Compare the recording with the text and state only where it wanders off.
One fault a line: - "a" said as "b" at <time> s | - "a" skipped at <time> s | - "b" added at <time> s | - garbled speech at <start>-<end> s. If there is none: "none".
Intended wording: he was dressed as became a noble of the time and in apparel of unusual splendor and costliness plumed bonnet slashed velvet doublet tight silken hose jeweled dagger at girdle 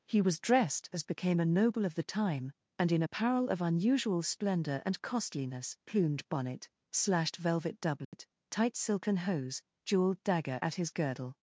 - "his" added at 10.8 s